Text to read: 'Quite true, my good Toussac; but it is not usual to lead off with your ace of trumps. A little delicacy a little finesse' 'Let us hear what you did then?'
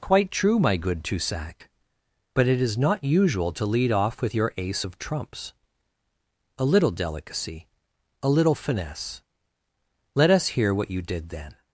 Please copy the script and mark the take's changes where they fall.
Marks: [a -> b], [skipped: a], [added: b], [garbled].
'Quite true, my good Toussac; but it is not usual to lead off with your ace of trumps. A little delicacy a little finesse' 'Let us hear what you did then?'